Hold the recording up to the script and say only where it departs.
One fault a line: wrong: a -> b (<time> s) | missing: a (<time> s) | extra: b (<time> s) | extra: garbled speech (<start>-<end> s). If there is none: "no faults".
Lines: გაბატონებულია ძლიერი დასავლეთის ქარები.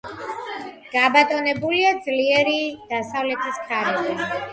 no faults